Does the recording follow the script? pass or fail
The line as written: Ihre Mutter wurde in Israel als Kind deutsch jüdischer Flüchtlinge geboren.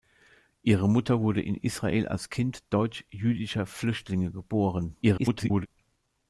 fail